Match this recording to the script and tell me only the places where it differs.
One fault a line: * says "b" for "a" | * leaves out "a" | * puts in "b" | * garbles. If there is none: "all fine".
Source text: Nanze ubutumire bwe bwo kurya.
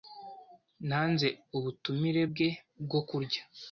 all fine